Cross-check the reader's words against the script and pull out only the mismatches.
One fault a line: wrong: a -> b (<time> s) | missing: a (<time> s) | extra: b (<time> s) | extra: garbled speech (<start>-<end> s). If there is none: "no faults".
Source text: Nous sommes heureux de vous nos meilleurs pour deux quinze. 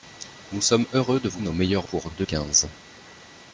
no faults